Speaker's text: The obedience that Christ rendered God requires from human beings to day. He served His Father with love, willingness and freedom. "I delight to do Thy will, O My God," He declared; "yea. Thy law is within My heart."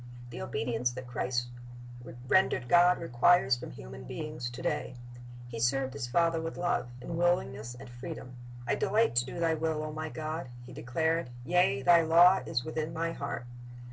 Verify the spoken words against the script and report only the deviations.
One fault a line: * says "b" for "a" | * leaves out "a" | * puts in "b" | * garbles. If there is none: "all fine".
* puts in "in"